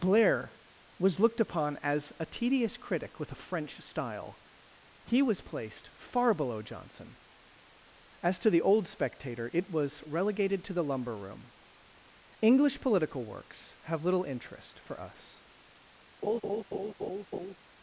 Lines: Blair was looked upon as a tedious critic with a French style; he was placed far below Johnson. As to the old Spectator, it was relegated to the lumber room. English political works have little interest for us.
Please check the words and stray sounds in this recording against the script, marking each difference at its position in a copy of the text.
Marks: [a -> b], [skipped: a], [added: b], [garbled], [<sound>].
Blair was looked upon as a tedious critic with a French style; he was placed far below Johnson. As to the old Spectator, it was relegated to the lumber room. English political works have little interest for us. [laugh]